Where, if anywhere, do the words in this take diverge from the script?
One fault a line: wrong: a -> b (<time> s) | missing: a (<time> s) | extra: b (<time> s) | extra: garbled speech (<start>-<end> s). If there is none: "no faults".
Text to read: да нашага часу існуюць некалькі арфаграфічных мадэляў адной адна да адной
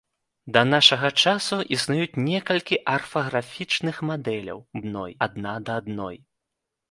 no faults